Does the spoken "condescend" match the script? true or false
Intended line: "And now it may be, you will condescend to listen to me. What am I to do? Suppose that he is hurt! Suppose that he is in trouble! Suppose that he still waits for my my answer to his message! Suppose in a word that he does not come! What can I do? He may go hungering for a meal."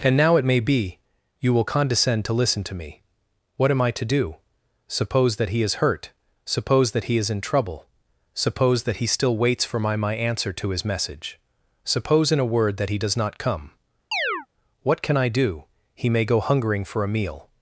true